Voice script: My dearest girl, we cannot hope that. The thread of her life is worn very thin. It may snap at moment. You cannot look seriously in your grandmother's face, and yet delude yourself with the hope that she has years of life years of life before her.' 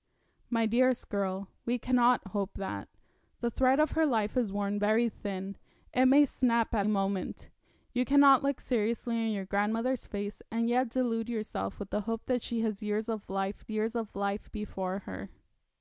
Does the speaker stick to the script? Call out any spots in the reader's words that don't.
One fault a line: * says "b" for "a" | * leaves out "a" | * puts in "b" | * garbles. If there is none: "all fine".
all fine